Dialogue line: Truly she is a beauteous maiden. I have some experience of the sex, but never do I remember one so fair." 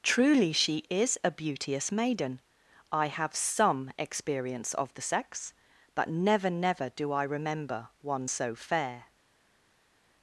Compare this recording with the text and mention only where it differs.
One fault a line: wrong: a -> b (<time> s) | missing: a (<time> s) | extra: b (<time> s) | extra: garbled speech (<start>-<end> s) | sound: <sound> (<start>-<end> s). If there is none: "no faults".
extra: never (6.5 s)